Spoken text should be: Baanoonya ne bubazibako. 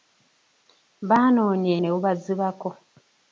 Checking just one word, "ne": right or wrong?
right